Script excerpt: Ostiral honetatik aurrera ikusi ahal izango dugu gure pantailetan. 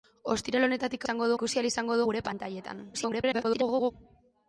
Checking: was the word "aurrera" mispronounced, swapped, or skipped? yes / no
yes